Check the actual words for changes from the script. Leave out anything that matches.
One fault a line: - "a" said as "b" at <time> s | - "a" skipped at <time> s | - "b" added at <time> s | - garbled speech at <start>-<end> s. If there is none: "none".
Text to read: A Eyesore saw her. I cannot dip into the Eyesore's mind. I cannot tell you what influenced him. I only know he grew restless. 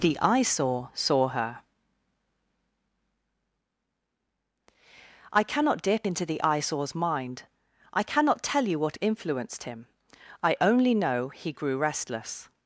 - "A" said as "The" at 0.0 s